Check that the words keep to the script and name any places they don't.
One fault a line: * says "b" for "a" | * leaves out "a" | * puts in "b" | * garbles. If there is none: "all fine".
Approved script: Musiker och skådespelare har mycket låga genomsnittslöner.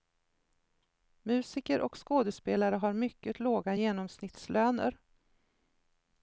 all fine